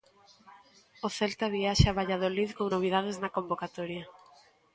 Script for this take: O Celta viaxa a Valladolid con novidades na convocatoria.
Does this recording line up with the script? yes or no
yes